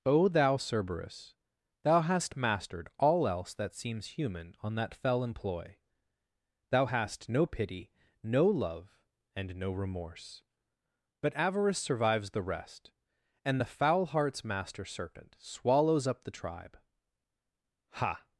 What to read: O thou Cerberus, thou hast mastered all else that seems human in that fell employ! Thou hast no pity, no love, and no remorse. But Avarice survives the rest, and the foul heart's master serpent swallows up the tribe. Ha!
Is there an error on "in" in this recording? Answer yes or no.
yes